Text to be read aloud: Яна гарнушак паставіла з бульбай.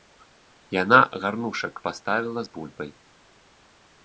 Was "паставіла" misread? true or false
false